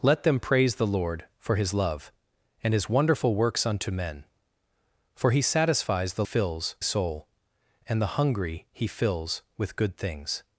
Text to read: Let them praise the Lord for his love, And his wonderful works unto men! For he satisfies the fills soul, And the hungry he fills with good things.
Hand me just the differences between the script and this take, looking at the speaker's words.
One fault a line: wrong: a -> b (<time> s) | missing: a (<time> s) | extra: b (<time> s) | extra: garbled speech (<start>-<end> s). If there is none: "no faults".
no faults